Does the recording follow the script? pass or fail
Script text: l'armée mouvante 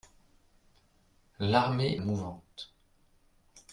pass